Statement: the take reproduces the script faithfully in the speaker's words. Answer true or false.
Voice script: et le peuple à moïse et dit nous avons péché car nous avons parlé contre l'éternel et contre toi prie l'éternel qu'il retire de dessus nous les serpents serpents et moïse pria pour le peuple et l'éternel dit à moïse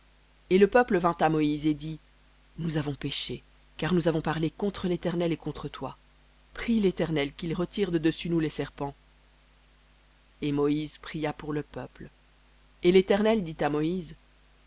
false